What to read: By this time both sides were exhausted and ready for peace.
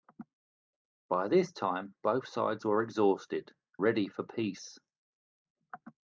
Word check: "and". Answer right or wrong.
wrong